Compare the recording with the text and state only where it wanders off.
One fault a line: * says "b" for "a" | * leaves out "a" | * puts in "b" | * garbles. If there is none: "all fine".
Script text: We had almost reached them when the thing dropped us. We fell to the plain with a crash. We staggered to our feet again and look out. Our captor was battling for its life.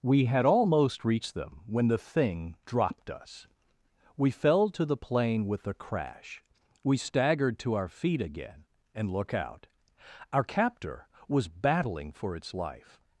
all fine